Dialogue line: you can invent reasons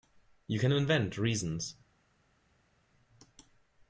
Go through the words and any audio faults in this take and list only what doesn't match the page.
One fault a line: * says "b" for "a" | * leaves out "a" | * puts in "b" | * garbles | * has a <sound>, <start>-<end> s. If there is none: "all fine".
all fine